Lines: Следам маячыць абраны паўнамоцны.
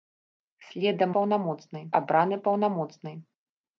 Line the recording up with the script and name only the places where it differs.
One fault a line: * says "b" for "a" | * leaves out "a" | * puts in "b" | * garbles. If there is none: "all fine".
* says "паўнамоцны" for "маячыць"